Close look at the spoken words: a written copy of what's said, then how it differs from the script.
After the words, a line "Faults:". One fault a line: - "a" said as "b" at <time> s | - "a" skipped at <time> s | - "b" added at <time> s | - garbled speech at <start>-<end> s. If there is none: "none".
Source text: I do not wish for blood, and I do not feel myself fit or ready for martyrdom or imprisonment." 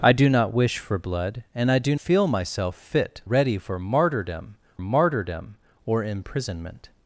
I do not wish for blood, and I do feel myself fit ready for martyrdom martyrdom or imprisonment."
Faults:
- "not" skipped at 1.9 s
- "or" skipped at 3.2 s
- "martyrdom" added at 4.8 s